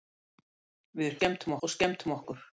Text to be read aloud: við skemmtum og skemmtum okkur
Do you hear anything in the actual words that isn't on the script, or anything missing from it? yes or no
no